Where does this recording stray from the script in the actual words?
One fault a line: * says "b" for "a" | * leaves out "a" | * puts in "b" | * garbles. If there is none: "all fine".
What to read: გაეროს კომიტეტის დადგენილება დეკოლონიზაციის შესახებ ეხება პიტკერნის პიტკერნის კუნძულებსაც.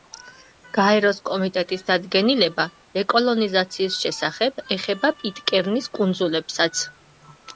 * leaves out "პიტკერნის"